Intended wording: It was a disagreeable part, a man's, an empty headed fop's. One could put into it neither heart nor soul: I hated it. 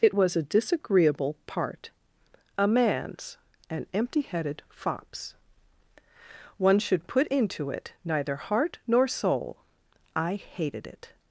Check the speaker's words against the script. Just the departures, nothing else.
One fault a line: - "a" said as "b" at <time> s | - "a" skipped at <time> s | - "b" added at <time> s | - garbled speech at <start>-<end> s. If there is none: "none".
- "could" said as "should" at 6.8 s